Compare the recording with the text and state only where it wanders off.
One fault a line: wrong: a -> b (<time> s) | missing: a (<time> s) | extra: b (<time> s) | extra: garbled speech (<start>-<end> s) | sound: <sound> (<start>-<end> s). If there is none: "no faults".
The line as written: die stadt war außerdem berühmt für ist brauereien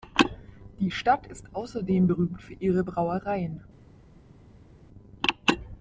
wrong: war -> ist (1.3 s)
wrong: ist -> ihre (2.5 s)